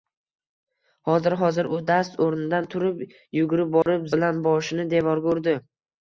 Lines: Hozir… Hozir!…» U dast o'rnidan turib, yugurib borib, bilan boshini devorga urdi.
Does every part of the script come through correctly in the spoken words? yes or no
yes